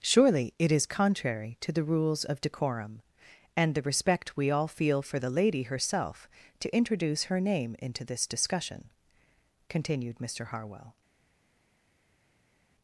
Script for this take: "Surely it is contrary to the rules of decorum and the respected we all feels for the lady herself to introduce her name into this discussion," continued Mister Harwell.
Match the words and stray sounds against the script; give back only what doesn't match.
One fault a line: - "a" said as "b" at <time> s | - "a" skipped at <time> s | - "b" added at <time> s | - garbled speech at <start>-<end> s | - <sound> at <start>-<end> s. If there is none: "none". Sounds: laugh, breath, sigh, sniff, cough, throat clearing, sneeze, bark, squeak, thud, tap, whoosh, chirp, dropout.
- "respected" said as "respect" at 3.8 s
- "feels" said as "feel" at 4.7 s